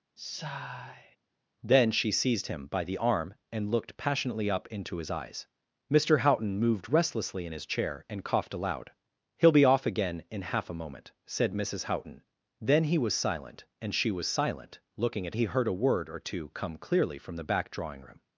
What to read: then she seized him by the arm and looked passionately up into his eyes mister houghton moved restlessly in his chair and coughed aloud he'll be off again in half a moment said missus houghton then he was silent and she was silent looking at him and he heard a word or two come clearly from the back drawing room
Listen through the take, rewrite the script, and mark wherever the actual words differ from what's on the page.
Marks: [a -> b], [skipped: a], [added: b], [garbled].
then she seized him by the arm and looked passionately up into his eyes mister houghton moved restlessly in his chair and coughed aloud he'll be off again in half a moment said missus houghton then he was silent and she was silent looking at [skipped: him and] he heard a word or two come clearly from the back drawing room